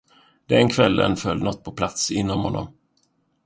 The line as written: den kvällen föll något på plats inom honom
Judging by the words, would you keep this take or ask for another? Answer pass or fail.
pass